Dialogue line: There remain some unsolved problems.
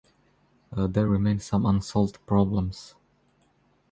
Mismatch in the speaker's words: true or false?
false